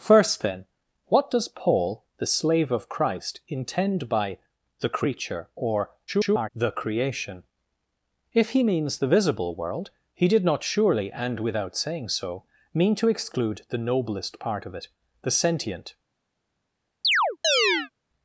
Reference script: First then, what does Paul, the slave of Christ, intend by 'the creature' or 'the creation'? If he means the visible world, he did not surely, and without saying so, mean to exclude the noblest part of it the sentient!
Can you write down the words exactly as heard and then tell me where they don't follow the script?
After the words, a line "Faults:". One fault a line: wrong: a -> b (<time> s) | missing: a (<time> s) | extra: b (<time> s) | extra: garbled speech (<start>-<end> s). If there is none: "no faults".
First then, what does Paul, the slave of Christ, intend by 'the creature' or [garbled] 'the creation'? If he means the visible world, he did not surely, and without saying so, mean to exclude the noblest part of it the sentient!
Faults:
extra: garbled speech (6.1-6.5 s)